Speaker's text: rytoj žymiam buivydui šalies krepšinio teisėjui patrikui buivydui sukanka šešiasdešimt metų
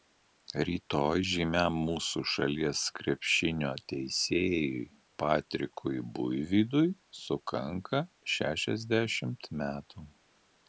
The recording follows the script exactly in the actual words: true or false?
false